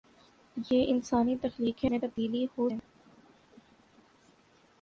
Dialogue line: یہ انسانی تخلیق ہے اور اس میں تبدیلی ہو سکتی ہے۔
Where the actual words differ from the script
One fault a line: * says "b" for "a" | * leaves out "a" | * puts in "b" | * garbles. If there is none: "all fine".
* leaves out "اور اس"
* leaves out "سکتی"